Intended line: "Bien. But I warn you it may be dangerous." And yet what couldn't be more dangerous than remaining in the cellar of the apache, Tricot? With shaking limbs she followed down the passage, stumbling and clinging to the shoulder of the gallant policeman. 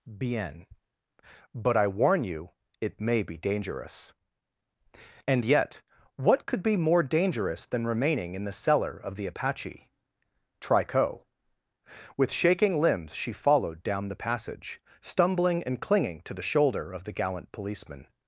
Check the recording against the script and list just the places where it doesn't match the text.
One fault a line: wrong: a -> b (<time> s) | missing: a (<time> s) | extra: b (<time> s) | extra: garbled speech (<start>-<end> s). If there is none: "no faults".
wrong: couldn't -> could (6.4 s)